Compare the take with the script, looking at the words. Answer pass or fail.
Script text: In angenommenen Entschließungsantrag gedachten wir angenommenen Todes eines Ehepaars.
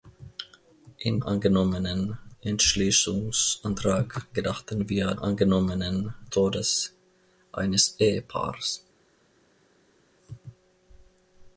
pass